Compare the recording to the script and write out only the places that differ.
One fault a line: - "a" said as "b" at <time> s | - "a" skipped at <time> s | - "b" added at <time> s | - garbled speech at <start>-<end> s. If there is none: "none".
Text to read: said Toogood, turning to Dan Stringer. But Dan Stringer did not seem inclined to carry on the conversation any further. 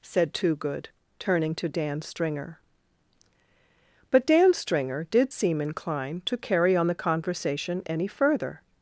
- "not" skipped at 5.3 s